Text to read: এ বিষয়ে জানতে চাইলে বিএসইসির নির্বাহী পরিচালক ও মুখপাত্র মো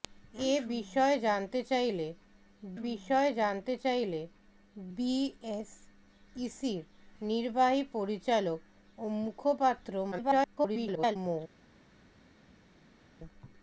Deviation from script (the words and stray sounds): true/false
true